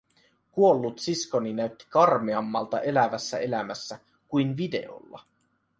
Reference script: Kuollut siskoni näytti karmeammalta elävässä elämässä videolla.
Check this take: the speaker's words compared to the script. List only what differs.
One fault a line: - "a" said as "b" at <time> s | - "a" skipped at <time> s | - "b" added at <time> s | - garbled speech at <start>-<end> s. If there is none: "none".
- "kuin" added at 4.3 s